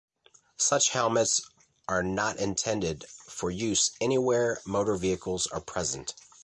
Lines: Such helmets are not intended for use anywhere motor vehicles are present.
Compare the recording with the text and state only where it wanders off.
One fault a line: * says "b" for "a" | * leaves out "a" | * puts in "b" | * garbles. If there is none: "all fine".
all fine